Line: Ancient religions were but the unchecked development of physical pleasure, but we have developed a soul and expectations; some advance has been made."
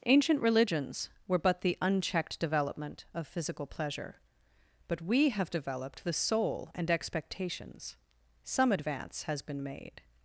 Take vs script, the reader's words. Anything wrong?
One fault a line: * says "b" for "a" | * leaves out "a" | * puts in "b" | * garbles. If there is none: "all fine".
* says "the" for "a"